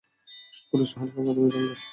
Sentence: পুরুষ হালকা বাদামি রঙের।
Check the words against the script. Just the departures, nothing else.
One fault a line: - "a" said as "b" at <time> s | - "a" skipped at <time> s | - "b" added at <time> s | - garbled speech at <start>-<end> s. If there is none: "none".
none